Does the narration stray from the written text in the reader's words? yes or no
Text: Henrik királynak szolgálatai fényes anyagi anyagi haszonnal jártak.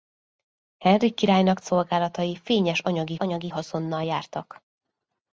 no